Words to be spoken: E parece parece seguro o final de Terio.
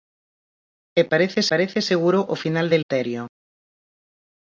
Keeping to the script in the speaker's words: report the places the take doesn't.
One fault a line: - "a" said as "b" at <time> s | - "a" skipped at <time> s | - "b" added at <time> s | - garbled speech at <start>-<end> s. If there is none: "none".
none